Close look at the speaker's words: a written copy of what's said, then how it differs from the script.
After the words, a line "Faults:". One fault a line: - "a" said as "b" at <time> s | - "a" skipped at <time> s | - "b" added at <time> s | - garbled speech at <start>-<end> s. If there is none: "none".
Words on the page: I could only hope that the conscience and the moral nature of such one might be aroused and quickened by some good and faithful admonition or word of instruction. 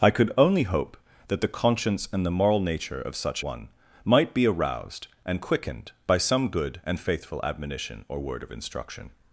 I could only hope that the conscience and the moral nature of such one might be aroused and quickened by some good and faithful admonition or word of instruction.
Faults:
none